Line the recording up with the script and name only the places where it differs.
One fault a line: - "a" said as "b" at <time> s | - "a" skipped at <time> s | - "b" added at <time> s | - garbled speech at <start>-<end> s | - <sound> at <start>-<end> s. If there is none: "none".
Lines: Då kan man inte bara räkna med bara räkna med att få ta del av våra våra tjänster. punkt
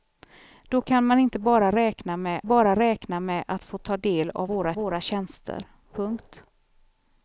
none